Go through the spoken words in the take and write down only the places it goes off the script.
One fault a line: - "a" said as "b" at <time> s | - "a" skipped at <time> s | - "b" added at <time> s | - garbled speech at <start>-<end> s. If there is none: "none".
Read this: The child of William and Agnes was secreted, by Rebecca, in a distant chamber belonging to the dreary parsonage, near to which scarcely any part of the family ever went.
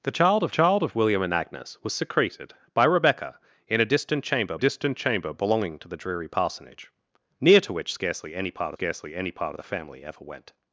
- "child of" added at 0.5 s
- "distant chamber" added at 4.6 s
- "scarcely any part" added at 8.7 s